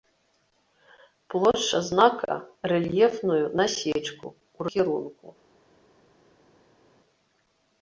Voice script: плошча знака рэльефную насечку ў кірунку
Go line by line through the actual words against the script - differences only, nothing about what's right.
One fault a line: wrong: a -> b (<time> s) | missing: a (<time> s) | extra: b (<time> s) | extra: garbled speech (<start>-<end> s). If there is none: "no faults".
no faults